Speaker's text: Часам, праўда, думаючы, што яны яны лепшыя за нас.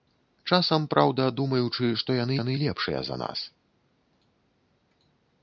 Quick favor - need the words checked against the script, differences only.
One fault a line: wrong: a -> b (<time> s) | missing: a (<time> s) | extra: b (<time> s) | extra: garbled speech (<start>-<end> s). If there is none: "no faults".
no faults